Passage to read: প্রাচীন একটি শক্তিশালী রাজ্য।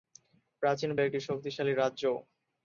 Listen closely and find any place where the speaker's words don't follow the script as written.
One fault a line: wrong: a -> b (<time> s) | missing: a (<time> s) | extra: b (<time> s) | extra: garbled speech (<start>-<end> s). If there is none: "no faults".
no faults